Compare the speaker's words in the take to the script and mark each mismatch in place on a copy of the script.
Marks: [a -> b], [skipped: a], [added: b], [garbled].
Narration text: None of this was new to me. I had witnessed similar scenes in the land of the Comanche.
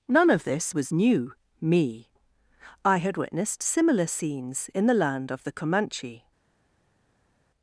None of this was new [skipped: to] me. I had witnessed similar scenes in the land of the Comanche.